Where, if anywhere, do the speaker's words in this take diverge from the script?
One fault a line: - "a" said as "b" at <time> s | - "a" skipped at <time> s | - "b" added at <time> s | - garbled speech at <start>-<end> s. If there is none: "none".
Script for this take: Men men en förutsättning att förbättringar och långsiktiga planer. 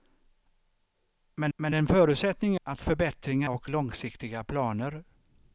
none